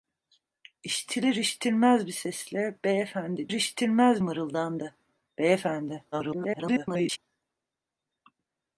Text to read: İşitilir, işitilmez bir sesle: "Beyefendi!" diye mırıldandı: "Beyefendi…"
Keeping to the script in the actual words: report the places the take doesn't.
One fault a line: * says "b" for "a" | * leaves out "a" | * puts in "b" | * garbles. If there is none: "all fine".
* says "işitilmez" for "diye"
* garbles